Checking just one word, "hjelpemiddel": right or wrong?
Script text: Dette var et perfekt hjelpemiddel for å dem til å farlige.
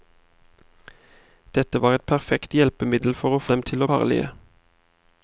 right